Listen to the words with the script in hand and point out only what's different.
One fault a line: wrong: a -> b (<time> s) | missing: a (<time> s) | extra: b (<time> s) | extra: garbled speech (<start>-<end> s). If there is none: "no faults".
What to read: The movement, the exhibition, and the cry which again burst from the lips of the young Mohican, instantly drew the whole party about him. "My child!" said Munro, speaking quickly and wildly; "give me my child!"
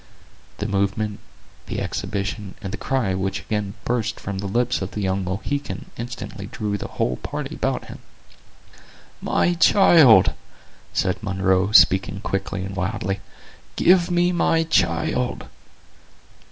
no faults